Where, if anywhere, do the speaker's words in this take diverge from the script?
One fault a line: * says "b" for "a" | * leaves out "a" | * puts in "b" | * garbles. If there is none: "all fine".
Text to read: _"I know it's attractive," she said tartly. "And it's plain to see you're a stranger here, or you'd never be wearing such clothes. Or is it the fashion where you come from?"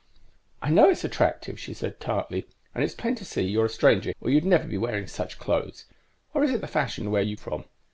* leaves out "here"
* leaves out "come"